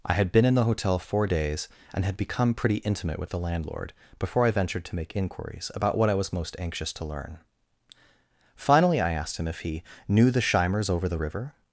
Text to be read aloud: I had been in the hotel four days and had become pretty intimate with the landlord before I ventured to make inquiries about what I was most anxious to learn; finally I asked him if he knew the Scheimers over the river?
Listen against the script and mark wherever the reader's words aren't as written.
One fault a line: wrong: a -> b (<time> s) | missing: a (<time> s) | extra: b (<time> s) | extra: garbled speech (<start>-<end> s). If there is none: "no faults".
no faults